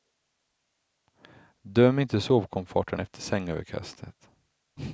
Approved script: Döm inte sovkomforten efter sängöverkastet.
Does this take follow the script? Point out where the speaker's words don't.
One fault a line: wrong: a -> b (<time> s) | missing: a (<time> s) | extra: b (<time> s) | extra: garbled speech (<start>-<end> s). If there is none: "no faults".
no faults